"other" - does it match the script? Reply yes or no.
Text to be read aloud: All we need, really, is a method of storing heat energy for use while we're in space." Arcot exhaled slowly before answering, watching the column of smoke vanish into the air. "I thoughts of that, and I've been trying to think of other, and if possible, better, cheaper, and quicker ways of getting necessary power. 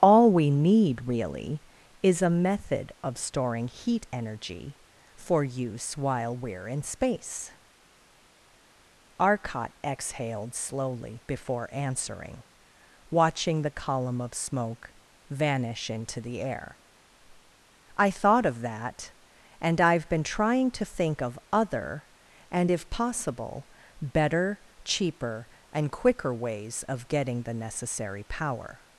yes